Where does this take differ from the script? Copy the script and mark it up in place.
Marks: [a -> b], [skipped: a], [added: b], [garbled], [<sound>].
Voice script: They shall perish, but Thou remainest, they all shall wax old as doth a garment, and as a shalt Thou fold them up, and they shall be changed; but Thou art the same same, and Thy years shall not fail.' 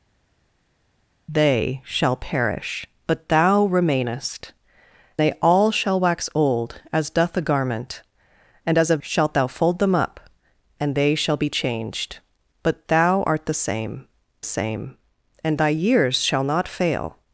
They shall perish, but Thou remainest, they all shall wax old as doth a garment, and as a shalt Thou fold them up, and they shall be changed; but Thou art the same same, and Thy years shall not fail.'